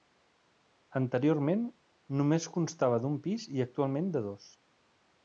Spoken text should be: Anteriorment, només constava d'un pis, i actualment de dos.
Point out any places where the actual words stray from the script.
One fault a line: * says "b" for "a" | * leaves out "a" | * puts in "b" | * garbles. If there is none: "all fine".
all fine